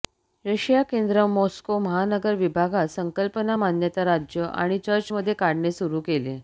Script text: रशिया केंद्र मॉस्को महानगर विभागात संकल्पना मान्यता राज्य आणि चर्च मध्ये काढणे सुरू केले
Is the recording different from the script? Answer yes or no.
no